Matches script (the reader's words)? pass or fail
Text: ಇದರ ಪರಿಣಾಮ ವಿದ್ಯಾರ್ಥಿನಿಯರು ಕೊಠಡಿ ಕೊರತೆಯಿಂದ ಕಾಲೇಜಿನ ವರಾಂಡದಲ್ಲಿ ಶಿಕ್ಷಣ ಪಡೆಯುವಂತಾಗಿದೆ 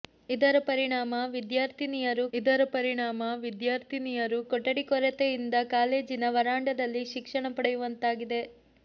fail